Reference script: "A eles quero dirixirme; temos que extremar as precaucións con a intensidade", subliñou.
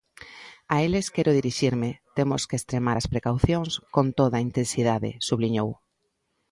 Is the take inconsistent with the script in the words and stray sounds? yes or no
yes